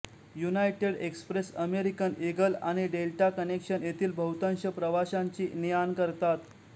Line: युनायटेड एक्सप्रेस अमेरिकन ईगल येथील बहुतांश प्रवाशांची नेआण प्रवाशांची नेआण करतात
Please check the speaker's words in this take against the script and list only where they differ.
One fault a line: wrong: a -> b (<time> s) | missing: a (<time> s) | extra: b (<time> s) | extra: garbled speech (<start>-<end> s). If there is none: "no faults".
extra: आणि डेल्टा कनेक्शन (2.6 s)
missing: प्रवाशांची नेआण (5.9 s)